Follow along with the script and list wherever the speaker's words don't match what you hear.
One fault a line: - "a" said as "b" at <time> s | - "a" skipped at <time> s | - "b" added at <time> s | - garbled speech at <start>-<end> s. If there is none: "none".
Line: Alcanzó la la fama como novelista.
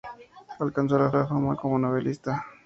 none